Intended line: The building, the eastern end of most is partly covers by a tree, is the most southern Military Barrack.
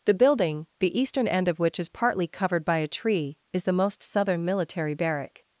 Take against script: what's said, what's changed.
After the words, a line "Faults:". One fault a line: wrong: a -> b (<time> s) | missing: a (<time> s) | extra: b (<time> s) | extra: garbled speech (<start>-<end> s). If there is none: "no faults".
The building, the eastern end of which is partly covered by a tree, is the most southern Military Barrack.
Faults:
wrong: most -> which (1.6 s)
wrong: covers -> covered (2.3 s)